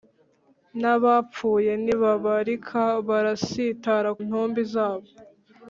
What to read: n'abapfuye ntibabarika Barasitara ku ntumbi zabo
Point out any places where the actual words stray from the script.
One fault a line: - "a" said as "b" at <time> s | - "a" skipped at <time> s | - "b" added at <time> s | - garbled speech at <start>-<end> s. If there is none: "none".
- "ku" skipped at 4.1 s